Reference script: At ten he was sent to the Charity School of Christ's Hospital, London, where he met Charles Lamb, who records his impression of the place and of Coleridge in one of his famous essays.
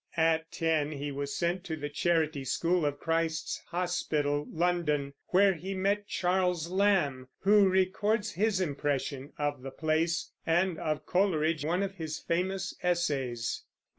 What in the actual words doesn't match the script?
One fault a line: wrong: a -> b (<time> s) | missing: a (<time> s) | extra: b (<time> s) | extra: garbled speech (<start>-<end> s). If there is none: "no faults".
missing: in (11.7 s)